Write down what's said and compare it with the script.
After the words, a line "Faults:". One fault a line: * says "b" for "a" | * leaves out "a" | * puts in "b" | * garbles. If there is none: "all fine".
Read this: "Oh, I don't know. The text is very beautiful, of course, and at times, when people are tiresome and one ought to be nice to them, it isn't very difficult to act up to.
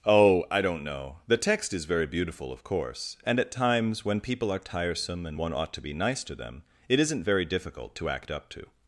"Oh, I don't know. The text is very beautiful, of course, and at times, when people are tiresome and one ought to be nice to them, it isn't very difficult to act up to.
Faults:
all fine